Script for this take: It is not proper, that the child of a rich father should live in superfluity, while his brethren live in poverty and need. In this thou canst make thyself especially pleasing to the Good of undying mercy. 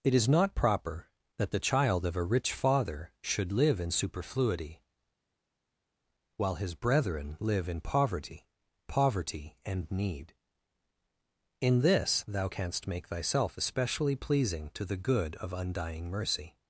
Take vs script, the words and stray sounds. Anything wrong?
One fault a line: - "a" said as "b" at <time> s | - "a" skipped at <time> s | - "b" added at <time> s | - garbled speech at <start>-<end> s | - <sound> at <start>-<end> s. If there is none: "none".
- "poverty" added at 8.9 s